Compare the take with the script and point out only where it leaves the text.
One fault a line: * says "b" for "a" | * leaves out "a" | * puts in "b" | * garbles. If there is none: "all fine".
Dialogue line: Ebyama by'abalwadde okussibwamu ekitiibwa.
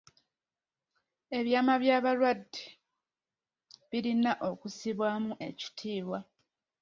* puts in "birina"